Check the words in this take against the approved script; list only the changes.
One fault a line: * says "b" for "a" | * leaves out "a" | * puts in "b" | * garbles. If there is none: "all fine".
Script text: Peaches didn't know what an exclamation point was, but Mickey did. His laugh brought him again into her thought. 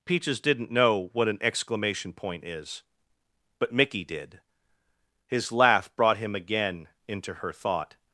* says "is" for "was"